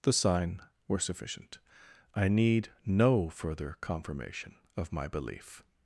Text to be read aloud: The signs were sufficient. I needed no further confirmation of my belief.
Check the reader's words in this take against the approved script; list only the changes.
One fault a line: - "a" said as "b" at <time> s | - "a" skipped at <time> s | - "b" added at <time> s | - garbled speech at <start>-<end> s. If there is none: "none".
- "signs" said as "sign" at 0.1 s
- "needed" said as "need" at 2.3 s